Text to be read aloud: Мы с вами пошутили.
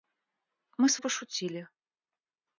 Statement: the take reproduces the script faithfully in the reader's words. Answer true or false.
false